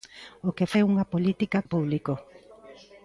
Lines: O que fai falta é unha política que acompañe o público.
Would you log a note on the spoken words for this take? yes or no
yes